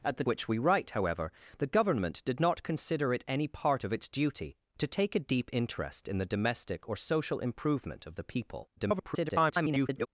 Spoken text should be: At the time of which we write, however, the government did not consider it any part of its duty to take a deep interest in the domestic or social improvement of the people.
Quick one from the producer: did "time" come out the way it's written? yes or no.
no